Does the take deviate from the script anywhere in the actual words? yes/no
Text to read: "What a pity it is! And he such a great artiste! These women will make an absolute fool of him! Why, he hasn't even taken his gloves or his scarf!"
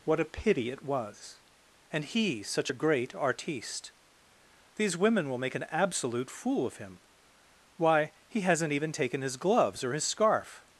yes